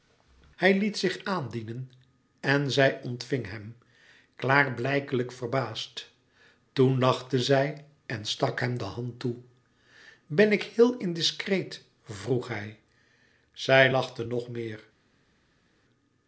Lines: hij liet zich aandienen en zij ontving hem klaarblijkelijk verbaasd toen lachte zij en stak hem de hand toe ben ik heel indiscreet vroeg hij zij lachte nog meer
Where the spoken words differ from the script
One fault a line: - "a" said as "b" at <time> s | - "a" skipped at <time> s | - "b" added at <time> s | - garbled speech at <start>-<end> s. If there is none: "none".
none